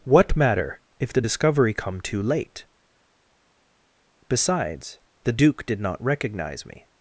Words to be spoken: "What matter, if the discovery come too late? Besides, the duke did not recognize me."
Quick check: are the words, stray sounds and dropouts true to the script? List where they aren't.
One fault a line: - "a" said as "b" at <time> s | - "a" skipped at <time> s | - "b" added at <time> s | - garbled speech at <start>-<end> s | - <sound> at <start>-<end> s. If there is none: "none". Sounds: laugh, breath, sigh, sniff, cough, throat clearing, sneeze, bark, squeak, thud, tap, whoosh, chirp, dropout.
none